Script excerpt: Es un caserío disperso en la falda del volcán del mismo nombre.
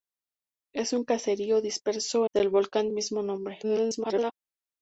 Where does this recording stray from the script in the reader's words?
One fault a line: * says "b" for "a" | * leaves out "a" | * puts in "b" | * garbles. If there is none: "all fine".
* leaves out "en la falda"
* leaves out "del"
* garbles